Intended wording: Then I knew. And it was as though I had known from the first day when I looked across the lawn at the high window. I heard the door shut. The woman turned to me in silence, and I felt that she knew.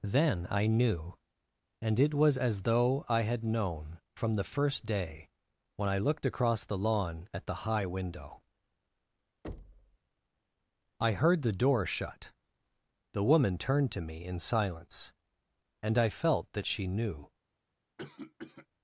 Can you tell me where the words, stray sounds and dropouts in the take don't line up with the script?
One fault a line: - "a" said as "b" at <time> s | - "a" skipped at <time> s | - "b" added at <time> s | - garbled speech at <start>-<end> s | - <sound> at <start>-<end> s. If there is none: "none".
- thud at 9.4-10.0 s
- cough at 18.0-18.7 s